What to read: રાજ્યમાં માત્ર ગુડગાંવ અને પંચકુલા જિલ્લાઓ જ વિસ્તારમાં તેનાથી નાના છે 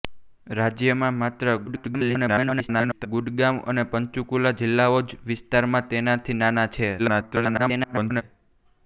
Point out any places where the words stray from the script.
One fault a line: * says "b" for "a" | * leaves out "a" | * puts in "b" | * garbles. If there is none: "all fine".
* garbles
* garbles